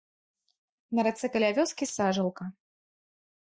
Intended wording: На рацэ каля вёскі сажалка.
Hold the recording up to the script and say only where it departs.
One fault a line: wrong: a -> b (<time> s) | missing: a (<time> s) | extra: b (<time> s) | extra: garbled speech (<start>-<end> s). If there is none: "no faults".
no faults